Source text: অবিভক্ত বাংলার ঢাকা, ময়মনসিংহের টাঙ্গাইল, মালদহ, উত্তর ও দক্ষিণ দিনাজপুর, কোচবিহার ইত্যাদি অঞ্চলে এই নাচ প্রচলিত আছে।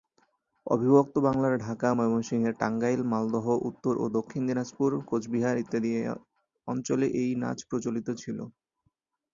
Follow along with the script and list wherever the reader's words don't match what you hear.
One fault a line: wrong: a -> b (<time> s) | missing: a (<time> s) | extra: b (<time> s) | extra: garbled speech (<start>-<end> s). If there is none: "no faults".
wrong: আছে -> ছিল (8.2 s)